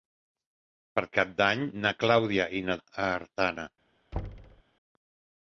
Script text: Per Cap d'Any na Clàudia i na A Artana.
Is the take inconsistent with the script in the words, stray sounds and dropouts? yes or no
yes